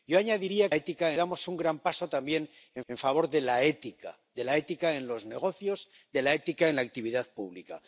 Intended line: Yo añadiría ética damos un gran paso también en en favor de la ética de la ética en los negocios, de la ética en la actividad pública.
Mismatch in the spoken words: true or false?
false